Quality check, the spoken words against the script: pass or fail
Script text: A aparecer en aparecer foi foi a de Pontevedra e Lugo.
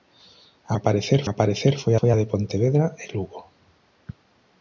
pass